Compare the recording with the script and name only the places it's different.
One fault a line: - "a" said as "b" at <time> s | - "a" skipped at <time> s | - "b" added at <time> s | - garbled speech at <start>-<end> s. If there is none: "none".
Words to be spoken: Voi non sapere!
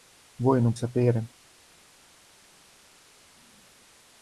none